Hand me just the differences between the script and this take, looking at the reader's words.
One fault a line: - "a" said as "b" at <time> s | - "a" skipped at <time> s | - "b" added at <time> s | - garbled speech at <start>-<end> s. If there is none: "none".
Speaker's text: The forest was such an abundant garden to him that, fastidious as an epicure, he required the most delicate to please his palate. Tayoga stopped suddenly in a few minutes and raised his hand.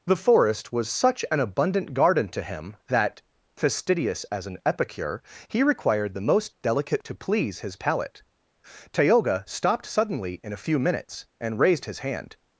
none